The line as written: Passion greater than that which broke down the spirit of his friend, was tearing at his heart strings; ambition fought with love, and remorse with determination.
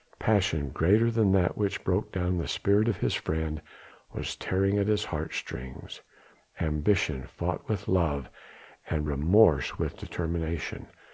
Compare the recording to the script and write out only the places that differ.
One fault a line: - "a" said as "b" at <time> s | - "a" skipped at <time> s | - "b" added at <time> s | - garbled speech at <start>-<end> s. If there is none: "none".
none